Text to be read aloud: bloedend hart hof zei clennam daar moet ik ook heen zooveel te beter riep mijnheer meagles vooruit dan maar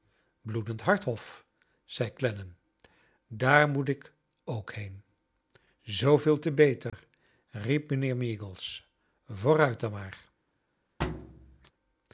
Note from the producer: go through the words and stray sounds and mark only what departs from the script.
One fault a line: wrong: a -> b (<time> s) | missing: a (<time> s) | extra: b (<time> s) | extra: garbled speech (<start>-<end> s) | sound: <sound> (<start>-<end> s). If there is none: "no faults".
sound: dropout (6.9-6.9 s)
sound: thud (11.0-11.7 s)